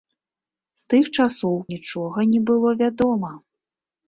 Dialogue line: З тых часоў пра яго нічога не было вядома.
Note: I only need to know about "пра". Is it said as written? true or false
false